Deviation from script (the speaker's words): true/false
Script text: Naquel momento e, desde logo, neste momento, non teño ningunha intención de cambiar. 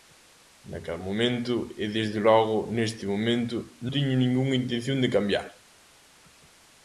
true